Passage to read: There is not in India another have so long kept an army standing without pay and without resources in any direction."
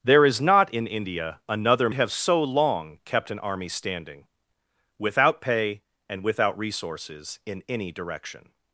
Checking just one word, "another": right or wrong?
right